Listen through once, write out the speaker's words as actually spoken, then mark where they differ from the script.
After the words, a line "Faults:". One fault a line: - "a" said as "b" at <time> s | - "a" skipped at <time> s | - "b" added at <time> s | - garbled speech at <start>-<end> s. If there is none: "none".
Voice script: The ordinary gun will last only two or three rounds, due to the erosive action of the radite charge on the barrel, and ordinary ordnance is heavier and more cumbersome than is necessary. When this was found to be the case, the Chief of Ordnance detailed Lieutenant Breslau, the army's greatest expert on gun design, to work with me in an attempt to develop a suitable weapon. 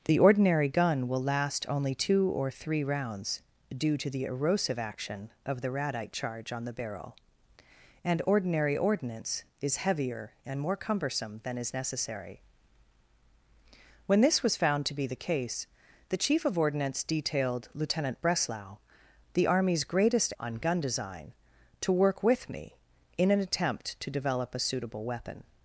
The ordinary gun will last only two or three rounds, due to the erosive action of the radite charge on the barrel, and ordinary ordnance is heavier and more cumbersome than is necessary. When this was found to be the case, the Chief of Ordnance detailed Lieutenant Breslau, the army's greatest on gun design, to work with me in an attempt to develop a suitable weapon.
Faults:
- "expert" skipped at 20.3 s